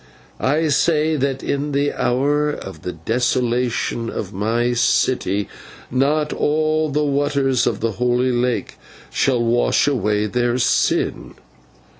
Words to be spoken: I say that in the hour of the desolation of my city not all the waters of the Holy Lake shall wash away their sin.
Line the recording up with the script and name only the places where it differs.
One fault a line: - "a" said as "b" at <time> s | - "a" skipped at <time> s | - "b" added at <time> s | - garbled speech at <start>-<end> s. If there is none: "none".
none